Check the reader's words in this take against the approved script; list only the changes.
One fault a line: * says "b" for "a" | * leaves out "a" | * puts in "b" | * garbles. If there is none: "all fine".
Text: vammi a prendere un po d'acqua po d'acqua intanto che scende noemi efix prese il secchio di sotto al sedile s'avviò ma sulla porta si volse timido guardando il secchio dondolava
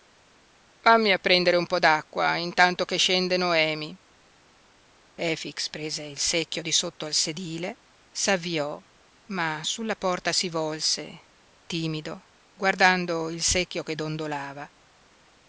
* leaves out "po d'acqua"
* puts in "che"